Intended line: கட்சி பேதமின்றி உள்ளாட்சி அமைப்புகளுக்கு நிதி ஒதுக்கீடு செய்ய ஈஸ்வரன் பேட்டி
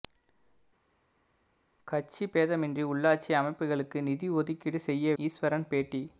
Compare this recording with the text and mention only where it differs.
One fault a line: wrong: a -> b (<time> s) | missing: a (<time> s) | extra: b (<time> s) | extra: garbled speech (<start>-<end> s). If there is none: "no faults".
no faults